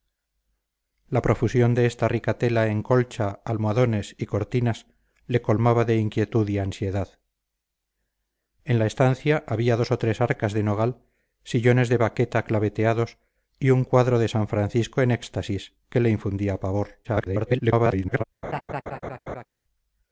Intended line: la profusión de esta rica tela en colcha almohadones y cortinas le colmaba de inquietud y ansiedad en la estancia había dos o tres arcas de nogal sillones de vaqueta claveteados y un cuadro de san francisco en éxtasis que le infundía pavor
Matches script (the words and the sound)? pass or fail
fail